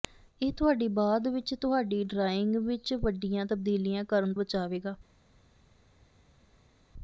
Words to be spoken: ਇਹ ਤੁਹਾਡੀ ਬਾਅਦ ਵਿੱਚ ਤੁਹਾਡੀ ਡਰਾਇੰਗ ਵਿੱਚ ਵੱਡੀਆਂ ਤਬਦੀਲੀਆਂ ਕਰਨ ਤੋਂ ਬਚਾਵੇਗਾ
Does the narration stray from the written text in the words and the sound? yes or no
yes